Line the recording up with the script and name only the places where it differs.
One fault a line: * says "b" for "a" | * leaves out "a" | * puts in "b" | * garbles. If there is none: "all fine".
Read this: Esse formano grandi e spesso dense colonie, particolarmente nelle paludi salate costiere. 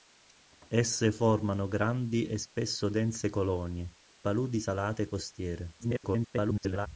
* leaves out "particolarmente nelle"
* garbles